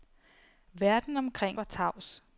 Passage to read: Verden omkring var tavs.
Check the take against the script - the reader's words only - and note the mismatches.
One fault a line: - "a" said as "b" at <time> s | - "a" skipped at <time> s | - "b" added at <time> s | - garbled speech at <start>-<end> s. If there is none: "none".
none